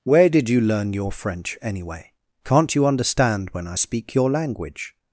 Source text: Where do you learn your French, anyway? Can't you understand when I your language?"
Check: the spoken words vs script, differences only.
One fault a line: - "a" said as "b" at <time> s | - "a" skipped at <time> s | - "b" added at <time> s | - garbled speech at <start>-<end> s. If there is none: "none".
- "do" said as "did" at 0.3 s
- "speak" added at 3.7 s